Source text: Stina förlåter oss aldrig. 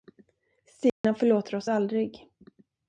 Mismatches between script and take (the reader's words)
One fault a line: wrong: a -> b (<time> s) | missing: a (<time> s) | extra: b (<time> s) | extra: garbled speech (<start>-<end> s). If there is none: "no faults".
no faults